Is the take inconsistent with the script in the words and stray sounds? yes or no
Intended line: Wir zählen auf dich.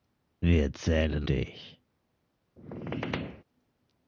yes